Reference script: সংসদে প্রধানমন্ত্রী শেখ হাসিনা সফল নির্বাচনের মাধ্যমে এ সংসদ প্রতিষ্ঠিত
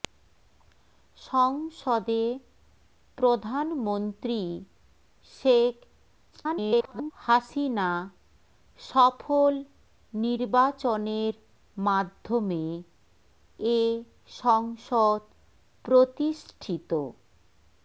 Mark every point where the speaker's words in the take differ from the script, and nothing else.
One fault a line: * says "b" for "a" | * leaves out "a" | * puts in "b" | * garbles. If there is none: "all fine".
* garbles